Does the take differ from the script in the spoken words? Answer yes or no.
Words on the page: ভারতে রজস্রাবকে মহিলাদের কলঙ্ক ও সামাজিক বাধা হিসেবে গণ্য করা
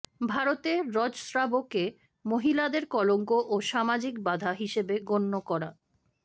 no